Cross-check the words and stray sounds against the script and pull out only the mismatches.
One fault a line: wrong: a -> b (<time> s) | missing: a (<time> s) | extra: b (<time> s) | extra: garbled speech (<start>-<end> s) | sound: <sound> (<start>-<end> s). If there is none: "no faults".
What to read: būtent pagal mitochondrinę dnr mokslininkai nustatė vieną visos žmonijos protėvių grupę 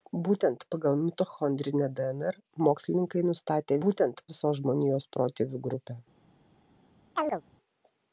wrong: vieną -> būtent (3.8 s)
sound: chirp (7.2-7.4 s)